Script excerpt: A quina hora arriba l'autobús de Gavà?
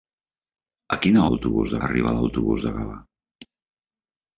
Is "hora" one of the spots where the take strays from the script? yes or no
yes